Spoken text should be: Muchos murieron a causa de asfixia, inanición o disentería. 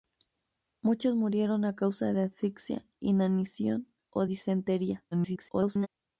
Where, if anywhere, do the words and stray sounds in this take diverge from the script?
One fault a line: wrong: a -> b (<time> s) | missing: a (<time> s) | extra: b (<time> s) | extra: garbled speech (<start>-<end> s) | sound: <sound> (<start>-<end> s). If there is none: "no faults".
extra: garbled speech (5.1-5.9 s)